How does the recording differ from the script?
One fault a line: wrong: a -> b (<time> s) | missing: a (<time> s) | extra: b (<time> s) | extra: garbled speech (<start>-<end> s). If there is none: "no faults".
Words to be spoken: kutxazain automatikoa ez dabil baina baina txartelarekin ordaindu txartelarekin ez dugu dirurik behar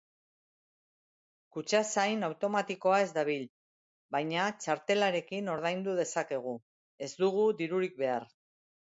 missing: baina (4.5 s)
wrong: txartelarekin -> dezakegu (6.0 s)